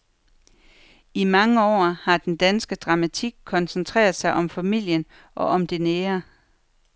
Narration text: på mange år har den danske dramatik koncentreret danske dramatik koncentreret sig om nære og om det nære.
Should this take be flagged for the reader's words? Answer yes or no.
yes